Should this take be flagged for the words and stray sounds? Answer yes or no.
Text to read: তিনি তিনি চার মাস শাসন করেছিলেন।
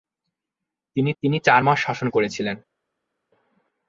no